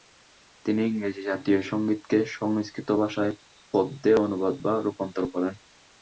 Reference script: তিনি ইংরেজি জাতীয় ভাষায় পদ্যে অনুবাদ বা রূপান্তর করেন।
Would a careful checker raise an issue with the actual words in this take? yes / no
yes